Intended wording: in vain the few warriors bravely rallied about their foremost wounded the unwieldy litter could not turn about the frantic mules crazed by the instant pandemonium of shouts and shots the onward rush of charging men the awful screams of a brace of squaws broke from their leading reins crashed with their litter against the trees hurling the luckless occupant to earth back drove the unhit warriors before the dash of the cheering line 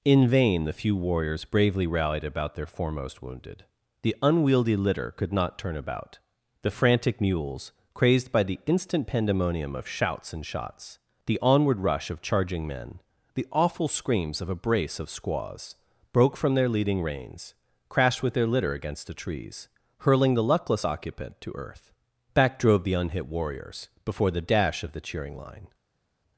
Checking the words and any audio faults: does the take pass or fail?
pass